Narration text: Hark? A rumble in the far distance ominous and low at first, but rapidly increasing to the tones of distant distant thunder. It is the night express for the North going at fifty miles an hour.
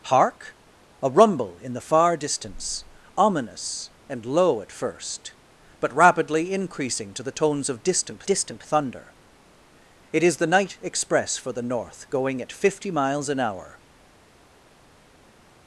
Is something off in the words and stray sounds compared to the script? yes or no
no